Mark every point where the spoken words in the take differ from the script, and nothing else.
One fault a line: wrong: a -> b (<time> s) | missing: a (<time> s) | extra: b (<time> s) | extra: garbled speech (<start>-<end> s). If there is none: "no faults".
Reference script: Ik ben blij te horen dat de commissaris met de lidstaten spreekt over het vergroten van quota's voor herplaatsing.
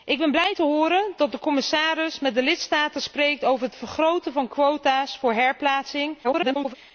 extra: garbled speech (6.2-6.8 s)